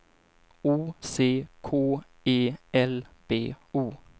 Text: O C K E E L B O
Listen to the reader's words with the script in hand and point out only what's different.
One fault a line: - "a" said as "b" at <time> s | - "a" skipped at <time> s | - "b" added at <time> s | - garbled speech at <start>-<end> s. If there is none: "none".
- "E" skipped at 2.5 s